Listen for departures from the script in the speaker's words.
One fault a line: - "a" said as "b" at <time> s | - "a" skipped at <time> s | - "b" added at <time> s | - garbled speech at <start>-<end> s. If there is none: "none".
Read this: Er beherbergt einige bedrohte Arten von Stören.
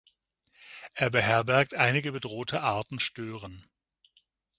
- "von" skipped at 3.0 s